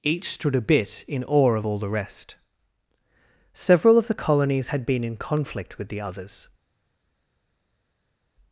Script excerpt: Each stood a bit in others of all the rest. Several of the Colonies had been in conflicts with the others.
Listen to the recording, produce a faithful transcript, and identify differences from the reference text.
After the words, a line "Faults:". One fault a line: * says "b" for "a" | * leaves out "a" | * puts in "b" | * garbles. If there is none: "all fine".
Each stood a bit in awe of all the rest. Several of the Colonies had been in conflict with the others.
Faults:
* says "awe" for "others"
* says "conflict" for "conflicts"